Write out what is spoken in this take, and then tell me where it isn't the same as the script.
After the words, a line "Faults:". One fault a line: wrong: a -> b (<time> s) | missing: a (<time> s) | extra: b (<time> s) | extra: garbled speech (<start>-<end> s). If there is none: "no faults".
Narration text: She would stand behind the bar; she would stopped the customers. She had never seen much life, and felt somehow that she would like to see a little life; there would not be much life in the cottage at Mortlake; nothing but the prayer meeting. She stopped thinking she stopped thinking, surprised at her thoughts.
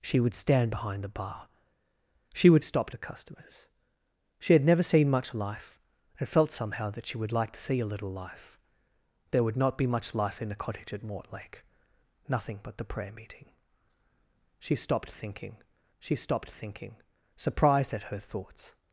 She would stand behind the bar; she would stopped the customers. She had never seen much life, and felt somehow that she would like to see a little life; there would not be much life in the cottage at Mortlake; nothing but the prayer meeting. She stopped thinking she stopped thinking, surprised at her thoughts.
Faults:
no faults